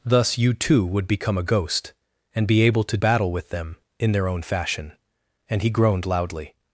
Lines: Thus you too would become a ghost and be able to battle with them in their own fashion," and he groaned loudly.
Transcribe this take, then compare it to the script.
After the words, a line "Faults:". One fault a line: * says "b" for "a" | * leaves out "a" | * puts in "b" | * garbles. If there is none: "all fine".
Thus you too would become a ghost and be able to battle with them in their own fashion," and he groaned loudly.
Faults:
all fine